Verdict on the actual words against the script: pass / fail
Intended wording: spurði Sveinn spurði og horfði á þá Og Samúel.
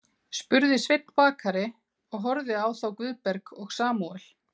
fail